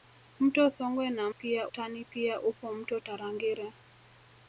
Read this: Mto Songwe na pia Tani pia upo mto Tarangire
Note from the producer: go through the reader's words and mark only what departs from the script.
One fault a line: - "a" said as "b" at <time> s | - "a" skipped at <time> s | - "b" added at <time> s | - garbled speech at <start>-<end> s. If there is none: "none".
none